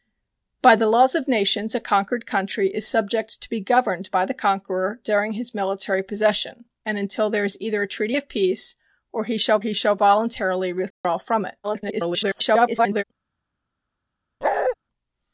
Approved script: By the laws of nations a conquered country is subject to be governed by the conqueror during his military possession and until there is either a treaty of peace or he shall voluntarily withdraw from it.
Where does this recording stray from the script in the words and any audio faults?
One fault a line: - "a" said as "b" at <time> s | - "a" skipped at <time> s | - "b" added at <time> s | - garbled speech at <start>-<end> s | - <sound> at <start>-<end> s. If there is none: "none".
- "he shall" added at 9.6 s
- dropout at 10.9-11.0 s
- garbled speech at 11.6-13.0 s
- bark at 14.4-14.8 s